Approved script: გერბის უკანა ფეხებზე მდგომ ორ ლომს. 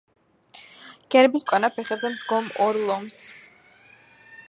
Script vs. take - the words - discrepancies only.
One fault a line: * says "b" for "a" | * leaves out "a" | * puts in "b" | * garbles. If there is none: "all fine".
all fine